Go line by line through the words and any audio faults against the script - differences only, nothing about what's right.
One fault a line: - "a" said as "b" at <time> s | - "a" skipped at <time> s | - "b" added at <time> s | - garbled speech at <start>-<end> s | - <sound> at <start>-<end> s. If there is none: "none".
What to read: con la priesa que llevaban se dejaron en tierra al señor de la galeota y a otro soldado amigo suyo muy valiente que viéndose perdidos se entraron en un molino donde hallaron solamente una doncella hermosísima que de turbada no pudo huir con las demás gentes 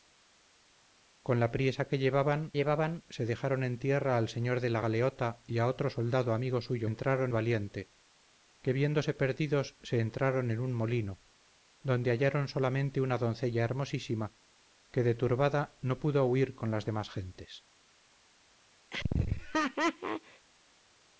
- "llevaban" added at 2.5 s
- "muy" said as "entraron" at 6.8 s
- laugh at 18.9-20.5 s